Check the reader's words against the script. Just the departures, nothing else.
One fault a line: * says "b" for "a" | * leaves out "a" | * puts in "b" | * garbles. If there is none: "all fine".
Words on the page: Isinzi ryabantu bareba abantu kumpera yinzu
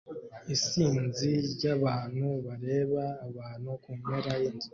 all fine